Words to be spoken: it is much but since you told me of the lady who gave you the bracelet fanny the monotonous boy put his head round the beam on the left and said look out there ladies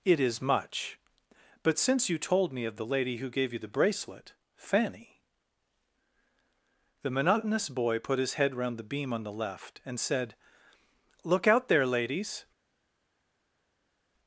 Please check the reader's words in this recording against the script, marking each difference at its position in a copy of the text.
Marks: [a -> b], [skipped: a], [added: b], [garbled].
it is much but since you told me of the lady who gave you the bracelet fanny the monotonous boy put his head round the beam on the left and said look out there ladies